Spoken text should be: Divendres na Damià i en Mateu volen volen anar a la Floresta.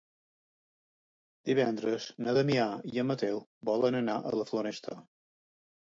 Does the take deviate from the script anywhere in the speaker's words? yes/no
yes